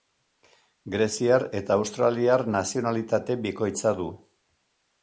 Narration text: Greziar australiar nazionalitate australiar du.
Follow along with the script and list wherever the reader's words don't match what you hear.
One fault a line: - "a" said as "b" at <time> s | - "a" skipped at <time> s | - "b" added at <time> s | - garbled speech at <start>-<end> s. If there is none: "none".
- "eta" added at 1.6 s
- "australiar" said as "bikoitza" at 3.5 s